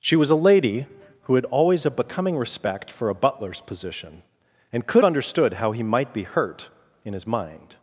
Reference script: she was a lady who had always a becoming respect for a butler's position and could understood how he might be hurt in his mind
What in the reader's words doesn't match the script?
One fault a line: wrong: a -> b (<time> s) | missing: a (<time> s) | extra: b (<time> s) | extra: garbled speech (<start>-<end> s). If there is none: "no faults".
no faults